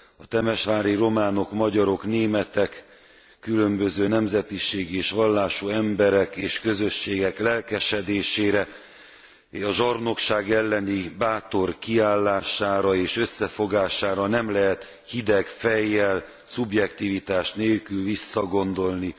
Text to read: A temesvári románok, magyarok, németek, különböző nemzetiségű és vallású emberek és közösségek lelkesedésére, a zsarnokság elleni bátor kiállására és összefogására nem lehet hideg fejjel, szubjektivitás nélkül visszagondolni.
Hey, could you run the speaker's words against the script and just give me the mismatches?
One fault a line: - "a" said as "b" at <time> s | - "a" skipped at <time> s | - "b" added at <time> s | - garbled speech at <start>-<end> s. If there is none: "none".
none